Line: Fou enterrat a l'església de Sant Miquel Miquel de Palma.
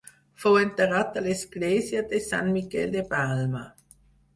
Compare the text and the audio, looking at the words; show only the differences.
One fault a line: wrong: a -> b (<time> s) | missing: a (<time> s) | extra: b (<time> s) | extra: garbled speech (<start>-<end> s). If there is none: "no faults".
missing: Miquel (3.0 s)